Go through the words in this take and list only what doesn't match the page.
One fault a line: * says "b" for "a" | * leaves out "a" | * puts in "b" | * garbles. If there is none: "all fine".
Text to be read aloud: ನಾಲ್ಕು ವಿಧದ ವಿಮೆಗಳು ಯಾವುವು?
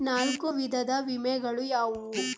all fine